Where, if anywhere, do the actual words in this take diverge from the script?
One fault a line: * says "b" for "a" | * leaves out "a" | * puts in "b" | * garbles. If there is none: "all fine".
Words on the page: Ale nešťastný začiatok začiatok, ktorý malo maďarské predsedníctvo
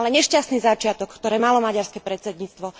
* leaves out "začiatok"